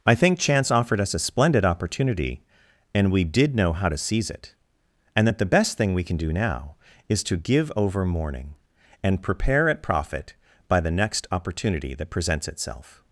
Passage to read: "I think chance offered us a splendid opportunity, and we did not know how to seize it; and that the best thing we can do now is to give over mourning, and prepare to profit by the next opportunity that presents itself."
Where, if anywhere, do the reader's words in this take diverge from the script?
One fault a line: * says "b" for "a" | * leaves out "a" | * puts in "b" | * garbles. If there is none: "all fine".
* leaves out "not"
* says "at" for "to"